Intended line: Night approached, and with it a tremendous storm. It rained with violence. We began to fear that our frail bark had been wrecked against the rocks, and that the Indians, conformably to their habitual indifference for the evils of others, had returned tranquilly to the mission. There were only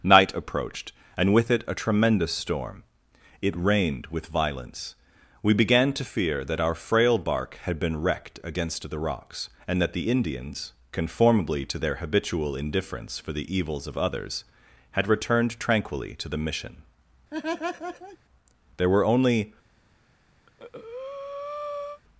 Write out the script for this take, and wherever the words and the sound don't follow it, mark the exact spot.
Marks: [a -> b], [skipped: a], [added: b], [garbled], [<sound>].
Night approached, and with it a tremendous storm. It rained with violence. We began to fear that our frail bark had been wrecked against the rocks, and that the Indians, conformably to their habitual indifference for the evils of others, had returned tranquilly to the mission. [laugh] There were only [breath]